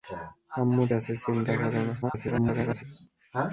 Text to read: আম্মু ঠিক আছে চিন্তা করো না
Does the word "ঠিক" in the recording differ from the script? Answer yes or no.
yes